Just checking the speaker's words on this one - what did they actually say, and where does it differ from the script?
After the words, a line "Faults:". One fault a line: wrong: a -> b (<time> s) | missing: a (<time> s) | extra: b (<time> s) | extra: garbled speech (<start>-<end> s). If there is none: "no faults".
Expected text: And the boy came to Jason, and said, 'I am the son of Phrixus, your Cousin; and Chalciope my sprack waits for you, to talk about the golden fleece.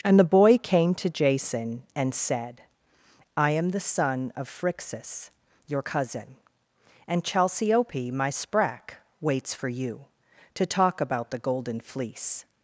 And the boy came to Jason, and said, 'I am the son of Phrixus, your Cousin; and Chalciope my sprack waits for you, to talk about the golden fleece.
Faults:
no faults